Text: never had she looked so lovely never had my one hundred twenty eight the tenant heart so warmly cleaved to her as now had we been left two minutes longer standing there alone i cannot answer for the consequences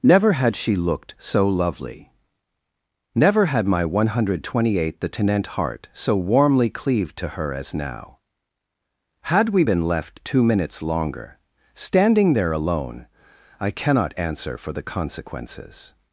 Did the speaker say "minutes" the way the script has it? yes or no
yes